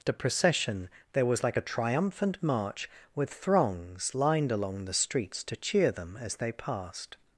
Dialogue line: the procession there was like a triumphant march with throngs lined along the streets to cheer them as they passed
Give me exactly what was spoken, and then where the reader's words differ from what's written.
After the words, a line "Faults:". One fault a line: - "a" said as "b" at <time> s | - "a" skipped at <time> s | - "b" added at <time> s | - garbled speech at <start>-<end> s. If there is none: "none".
the procession there was like a triumphant march with throngs lined along the streets to cheer them as they passed
Faults:
none